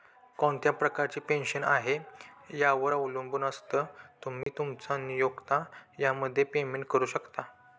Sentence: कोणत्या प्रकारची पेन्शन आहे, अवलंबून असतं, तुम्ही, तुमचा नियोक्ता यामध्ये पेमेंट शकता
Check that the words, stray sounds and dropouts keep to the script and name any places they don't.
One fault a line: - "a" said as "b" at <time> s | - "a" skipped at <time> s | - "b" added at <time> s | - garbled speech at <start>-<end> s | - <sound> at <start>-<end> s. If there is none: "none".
- "यावर" added at 2.5 s
- dropout at 4.4-4.5 s
- "करू" added at 6.9 s